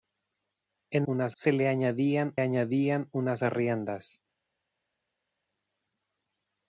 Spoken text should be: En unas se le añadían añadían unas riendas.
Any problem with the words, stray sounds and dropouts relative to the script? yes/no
no